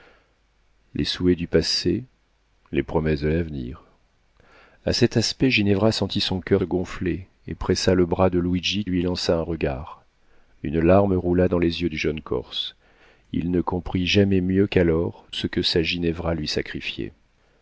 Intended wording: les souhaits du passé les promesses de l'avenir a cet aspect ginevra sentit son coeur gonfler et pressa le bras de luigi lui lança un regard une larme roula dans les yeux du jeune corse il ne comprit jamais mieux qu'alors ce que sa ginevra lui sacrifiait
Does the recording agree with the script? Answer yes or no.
yes